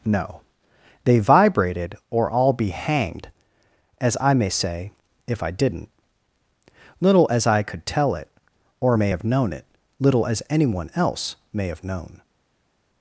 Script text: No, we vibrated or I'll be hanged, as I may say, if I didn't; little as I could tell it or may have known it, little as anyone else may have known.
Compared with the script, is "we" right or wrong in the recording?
wrong